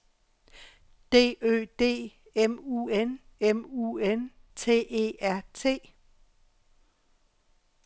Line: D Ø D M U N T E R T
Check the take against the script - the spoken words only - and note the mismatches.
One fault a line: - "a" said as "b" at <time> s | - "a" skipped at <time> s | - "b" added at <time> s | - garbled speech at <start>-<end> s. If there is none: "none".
- "M U N" added at 3.4 s